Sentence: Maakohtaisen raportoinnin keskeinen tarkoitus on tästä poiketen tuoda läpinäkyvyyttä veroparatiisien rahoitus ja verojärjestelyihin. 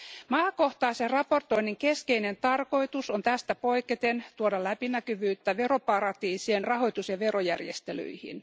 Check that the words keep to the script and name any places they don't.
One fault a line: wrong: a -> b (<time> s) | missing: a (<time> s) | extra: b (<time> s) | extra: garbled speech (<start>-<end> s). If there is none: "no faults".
no faults